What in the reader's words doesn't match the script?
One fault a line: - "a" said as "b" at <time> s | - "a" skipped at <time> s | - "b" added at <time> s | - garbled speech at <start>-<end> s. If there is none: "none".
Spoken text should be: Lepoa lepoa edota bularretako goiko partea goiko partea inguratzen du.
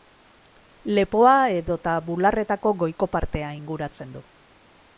- "lepoa" skipped at 1.3 s
- "goiko partea" skipped at 3.5 s